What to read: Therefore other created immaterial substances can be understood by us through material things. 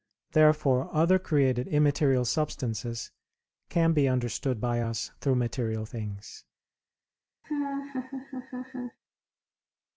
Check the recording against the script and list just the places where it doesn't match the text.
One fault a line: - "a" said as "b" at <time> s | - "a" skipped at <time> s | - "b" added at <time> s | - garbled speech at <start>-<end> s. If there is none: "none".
none